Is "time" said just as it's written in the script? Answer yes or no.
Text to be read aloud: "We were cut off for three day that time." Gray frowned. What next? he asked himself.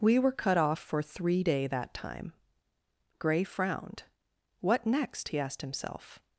yes